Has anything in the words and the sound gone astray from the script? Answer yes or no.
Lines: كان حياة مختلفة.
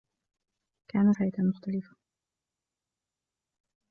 no